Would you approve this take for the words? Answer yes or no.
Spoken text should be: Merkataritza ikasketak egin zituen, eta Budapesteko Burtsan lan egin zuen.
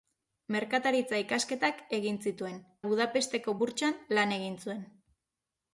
no